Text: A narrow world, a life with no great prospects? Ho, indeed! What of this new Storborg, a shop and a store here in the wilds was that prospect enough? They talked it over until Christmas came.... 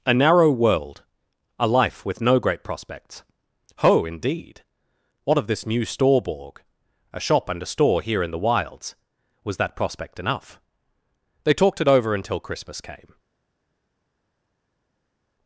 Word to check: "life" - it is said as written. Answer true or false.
true